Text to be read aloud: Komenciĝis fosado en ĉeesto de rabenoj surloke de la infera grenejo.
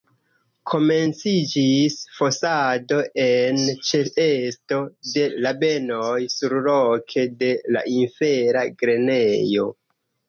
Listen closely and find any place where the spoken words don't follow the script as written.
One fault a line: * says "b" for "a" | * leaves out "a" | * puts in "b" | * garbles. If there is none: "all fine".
all fine